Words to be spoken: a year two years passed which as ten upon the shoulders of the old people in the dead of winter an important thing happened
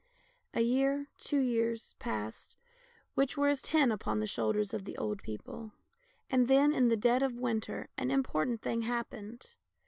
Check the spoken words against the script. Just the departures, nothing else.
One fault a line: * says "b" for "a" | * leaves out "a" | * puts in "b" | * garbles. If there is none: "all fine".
* puts in "were"
* puts in "and then"